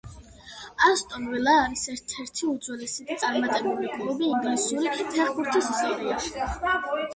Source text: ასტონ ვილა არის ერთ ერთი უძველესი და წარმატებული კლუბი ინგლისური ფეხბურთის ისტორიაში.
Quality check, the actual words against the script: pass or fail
pass